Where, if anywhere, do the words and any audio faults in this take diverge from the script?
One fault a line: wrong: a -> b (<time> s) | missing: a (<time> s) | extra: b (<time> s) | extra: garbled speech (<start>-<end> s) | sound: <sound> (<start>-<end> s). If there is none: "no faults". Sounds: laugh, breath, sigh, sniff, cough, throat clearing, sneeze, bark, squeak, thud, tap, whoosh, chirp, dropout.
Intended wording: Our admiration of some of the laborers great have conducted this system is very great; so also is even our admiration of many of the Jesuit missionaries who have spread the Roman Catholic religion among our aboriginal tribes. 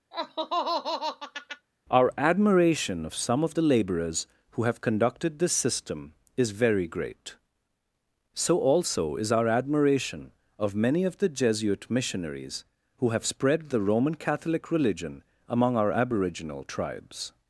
sound: laugh (0.1-1.7 s)
wrong: great -> who (4.5 s)
missing: even (9.3 s)